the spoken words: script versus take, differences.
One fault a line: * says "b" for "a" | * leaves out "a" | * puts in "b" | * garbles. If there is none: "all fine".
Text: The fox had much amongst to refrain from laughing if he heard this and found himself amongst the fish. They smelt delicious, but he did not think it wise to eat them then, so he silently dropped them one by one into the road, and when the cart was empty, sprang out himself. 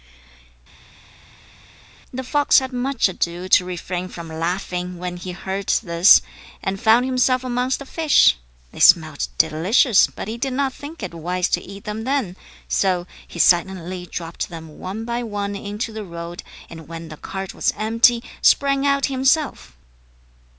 * says "ado" for "amongst"
* says "when" for "if"